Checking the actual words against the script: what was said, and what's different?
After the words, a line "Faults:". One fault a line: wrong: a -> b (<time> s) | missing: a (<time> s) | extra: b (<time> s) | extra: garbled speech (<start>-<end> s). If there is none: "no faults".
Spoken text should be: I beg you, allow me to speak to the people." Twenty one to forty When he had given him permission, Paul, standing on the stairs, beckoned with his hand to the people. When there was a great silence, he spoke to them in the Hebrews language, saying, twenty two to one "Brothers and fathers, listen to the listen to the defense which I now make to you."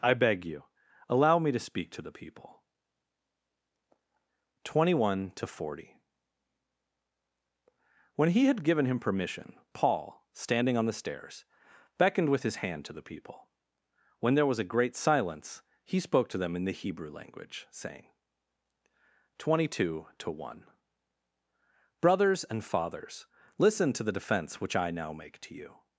I beg you, allow me to speak to the people." Twenty one to forty When he had given him permission, Paul, standing on the stairs, beckoned with his hand to the people. When there was a great silence, he spoke to them in the Hebrew language, saying, twenty two to one "Brothers and fathers, listen to the defense which I now make to you."
Faults:
wrong: Hebrews -> Hebrew (16.8 s)
missing: listen to the (24.2 s)